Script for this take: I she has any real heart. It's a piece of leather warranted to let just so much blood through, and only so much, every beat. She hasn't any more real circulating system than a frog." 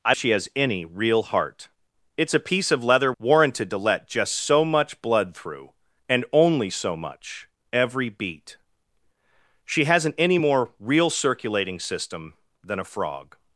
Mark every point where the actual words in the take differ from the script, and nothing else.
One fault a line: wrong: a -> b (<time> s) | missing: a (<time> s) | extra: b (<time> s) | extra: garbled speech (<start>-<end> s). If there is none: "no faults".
no faults